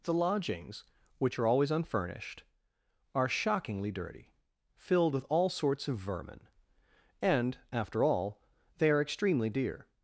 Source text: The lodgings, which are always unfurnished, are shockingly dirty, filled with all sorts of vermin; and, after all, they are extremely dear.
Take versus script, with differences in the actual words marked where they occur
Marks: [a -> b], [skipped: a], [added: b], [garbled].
The lodgings, which are always unfurnished, are shockingly dirty, filled with all sorts of vermin; and, after all, they are extremely dear.